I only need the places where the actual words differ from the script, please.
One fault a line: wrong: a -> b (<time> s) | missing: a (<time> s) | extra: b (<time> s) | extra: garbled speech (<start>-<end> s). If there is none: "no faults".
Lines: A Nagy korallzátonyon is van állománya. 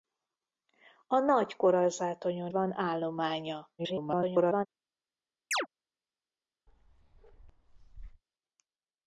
missing: is (2.5 s)
extra: garbled speech (3.8-4.7 s)